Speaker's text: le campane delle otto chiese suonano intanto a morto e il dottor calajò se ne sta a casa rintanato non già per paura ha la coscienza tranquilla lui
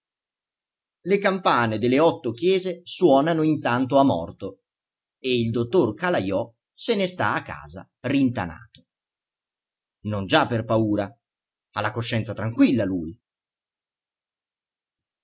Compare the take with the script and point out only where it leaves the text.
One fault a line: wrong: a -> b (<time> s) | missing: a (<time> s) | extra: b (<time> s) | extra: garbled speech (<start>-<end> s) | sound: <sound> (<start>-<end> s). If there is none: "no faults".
no faults